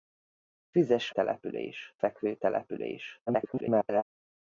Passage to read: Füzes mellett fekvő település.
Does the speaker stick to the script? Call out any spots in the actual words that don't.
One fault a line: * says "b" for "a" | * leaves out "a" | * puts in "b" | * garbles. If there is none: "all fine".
* says "település" for "mellett"
* garbles